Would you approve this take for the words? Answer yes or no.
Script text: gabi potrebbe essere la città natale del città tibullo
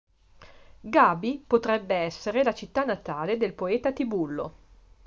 no